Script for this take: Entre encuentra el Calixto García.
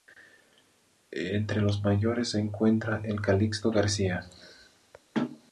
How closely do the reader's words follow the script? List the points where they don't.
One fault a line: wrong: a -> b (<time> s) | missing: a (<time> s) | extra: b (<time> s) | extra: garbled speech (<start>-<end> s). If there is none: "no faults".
extra: los mayores se (1.6 s)